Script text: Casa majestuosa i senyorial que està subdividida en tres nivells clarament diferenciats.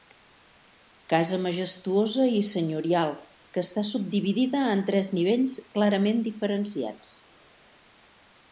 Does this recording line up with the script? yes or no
yes